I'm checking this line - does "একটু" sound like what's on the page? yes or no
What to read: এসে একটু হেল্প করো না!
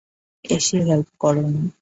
no